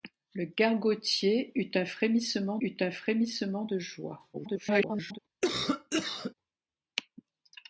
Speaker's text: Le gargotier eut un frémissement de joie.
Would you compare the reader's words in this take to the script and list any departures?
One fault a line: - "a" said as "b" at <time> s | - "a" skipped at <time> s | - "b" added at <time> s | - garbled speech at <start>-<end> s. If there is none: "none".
- "eut un frémissement" added at 2.6 s
- garbled speech at 4.3-5.2 s